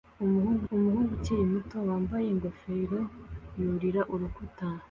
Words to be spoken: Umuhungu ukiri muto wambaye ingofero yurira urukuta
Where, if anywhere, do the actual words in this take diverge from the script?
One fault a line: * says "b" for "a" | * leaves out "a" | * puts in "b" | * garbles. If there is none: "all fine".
* puts in "umuhungu"